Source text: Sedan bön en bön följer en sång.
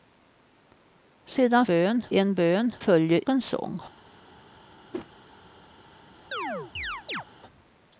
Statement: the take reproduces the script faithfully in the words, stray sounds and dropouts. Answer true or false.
false